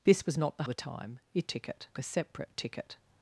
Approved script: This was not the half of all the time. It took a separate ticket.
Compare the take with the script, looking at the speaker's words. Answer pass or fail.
fail